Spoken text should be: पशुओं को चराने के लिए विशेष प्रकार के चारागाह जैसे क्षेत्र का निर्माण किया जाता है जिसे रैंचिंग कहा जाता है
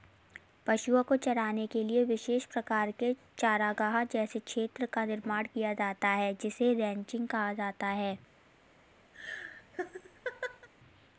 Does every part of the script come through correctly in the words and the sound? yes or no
no